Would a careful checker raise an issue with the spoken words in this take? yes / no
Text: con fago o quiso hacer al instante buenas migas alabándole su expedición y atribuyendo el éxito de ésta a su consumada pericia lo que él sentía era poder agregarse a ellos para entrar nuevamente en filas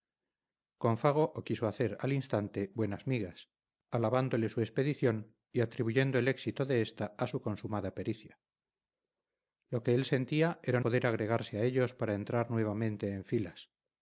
no